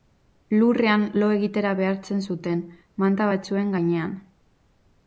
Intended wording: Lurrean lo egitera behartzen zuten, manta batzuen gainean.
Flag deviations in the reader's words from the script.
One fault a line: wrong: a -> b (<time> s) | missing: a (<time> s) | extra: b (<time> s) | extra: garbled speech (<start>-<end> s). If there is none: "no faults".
no faults